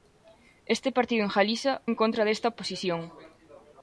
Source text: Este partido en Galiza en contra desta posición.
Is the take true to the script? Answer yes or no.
yes